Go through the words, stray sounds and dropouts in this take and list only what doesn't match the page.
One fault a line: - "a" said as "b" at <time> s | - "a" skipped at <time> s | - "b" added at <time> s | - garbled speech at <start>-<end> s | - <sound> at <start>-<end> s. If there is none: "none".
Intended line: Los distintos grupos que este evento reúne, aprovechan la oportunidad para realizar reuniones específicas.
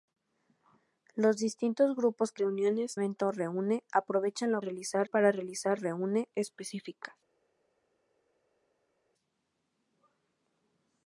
- "este" said as "reuniones" at 2.4 s
- "oportunidad" said as "realizar" at 4.6 s
- "reuniones" said as "reúne" at 5.8 s